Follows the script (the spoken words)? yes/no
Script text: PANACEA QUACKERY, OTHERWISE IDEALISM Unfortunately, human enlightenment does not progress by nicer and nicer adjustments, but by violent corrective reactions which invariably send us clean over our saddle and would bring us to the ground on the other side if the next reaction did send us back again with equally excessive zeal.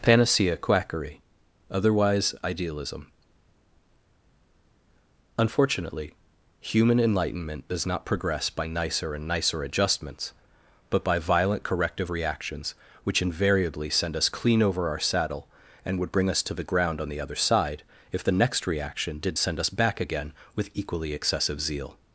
yes